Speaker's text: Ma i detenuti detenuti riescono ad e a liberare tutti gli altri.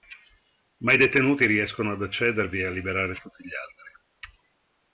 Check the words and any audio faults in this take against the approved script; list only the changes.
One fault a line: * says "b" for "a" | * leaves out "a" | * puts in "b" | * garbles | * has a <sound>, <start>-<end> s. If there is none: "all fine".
* leaves out "detenuti"
* puts in "accedervi"